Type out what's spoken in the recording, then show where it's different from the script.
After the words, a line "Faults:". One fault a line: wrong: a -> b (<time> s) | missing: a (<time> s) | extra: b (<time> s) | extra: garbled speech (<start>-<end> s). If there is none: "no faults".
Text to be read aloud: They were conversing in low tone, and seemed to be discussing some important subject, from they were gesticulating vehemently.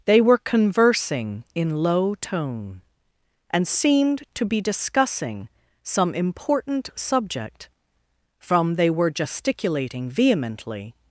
They were conversing in low tone, and seemed to be discussing some important subject, from they were gesticulating vehemently.
Faults:
no faults